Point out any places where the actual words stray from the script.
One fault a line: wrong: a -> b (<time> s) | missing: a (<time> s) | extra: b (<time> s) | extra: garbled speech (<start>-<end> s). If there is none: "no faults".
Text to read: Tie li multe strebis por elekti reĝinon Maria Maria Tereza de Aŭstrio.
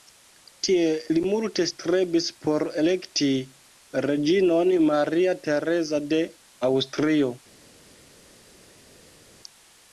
missing: Maria (5.4 s)